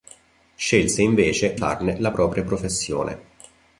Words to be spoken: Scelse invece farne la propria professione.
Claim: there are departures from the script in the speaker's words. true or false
false